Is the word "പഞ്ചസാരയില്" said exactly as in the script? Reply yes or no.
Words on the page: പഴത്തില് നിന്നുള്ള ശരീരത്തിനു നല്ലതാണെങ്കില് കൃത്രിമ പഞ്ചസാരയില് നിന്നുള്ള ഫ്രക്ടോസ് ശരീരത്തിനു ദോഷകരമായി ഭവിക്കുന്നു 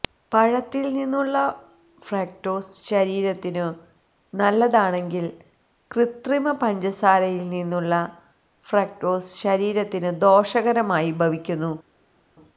yes